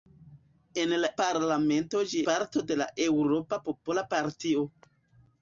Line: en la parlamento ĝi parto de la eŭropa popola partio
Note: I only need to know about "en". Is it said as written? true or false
true